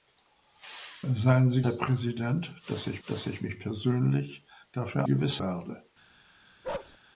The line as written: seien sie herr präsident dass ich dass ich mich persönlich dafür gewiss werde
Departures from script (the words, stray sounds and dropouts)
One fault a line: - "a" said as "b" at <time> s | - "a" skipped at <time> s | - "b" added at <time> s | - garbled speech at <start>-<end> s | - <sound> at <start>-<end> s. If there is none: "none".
- bark at 6.6-7.0 s